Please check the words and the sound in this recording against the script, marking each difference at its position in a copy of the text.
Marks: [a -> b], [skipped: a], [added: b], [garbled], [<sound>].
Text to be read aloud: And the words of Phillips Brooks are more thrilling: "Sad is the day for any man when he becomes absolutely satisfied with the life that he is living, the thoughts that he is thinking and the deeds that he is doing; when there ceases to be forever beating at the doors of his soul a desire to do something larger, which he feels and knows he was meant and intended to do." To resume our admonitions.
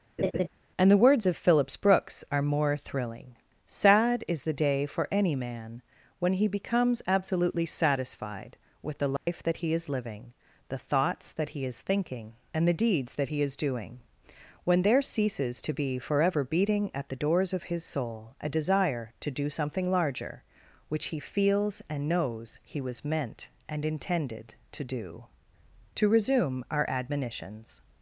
[laugh] And the words of Phillips Brooks are more thrilling: "Sad is the day for any man when he becomes absolutely satisfied with the life [dropout] that he is living, the thoughts that he is thinking and the deeds that he is doing; when there ceases to be forever beating at the doors of his soul a desire to do something larger, which he feels and knows he was meant and intended to do." To resume our admonitions.